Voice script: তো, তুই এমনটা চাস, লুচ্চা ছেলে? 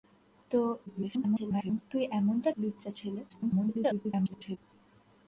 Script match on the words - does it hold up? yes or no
no